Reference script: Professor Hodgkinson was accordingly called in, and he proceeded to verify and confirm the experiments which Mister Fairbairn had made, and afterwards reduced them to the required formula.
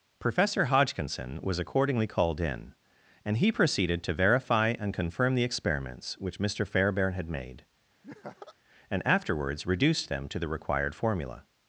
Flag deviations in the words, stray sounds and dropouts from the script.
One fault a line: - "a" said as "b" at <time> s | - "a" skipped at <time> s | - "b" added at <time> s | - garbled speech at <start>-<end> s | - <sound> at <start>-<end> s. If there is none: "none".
- laugh at 8.0-8.6 s